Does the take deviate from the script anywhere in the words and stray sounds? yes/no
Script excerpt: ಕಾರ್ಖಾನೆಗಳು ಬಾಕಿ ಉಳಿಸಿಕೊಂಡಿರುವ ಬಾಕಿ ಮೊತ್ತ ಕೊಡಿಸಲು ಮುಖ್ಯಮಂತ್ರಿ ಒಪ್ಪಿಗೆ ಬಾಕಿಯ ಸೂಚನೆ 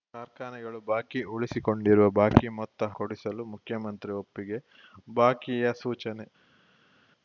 no